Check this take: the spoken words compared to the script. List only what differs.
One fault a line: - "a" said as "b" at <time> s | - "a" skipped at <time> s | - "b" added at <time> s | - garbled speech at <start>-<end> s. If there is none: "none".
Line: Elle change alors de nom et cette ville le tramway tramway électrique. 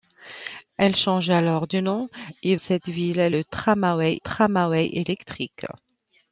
none